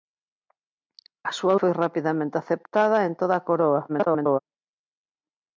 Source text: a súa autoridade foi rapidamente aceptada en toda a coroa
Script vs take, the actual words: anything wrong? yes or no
yes